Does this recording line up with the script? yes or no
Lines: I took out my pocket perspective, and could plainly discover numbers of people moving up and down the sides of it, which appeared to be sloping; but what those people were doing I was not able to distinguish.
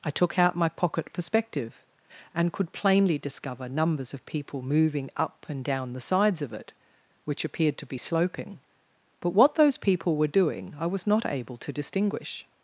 yes